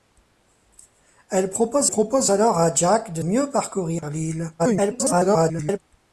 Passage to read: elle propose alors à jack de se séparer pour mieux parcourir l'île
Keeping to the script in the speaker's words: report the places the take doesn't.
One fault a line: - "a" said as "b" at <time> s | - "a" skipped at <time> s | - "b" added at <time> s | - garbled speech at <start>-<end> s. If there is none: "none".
- "propose" added at 1.9 s
- "se séparer pour" skipped at 3.2 s
- garbled speech at 4.6-5.8 s